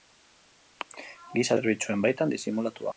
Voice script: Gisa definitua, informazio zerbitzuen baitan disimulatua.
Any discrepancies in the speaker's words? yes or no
yes